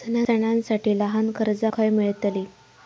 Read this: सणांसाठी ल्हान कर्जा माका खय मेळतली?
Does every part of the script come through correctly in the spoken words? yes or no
no